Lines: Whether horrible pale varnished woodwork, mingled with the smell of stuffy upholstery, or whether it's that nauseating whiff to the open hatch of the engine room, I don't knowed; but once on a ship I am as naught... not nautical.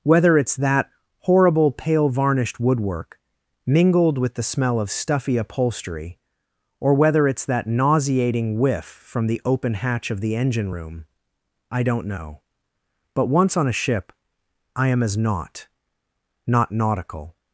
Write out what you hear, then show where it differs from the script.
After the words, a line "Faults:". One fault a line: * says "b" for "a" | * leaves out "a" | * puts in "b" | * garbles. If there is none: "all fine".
Whether it's that horrible pale varnished woodwork, mingled with the smell of stuffy upholstery, or whether it's that nauseating whiff from the open hatch of the engine room, I don't know; but once on a ship I am as naught... not nautical.
Faults:
* puts in "it's that"
* says "from" for "to"
* says "know" for "knowed"